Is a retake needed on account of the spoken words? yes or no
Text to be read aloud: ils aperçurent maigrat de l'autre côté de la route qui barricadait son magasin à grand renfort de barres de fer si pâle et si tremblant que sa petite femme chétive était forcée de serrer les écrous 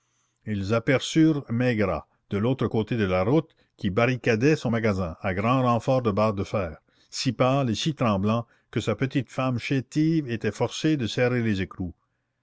no